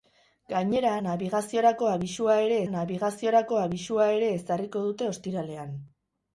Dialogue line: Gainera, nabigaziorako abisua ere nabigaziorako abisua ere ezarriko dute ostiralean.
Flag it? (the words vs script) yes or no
no